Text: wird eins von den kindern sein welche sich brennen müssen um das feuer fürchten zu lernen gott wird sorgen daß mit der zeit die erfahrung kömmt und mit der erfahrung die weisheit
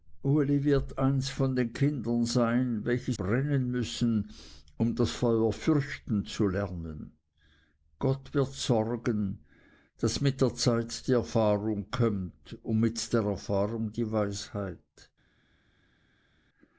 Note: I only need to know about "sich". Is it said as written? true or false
false